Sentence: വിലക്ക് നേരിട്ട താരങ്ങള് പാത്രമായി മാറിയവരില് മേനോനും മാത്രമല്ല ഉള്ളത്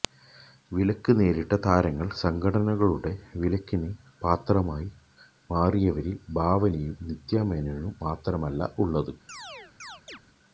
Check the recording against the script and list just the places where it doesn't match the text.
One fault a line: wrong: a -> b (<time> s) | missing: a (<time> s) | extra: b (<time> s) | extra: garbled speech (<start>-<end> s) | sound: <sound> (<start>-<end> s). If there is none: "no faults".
extra: സംഘടനകളുടെ വിലക്കിന് (2.2 s)
extra: ഭാവനയും നിത്യ (6.3 s)
sound: chirp (9.3-10.2 s)